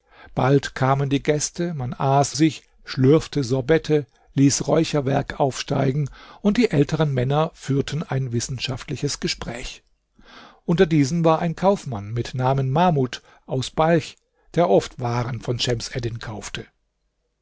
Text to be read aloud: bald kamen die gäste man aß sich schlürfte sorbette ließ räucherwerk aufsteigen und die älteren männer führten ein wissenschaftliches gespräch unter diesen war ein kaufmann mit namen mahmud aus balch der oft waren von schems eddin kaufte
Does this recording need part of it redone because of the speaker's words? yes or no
no